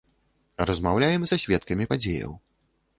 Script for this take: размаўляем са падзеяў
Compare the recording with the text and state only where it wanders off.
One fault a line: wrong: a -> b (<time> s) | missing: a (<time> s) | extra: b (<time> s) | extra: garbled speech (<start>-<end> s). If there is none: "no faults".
extra: сведкамі (1.5 s)